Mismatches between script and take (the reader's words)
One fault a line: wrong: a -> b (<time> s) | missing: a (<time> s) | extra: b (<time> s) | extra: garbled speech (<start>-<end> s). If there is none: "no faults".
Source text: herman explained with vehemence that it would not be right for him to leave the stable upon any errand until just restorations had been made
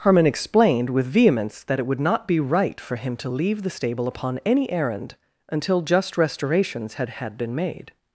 extra: had (7.1 s)